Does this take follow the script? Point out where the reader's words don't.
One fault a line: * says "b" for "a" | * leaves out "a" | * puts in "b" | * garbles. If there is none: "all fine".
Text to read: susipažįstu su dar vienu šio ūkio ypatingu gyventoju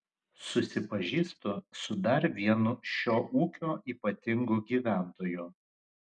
all fine